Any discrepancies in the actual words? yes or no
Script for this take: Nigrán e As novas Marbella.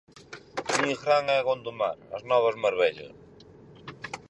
yes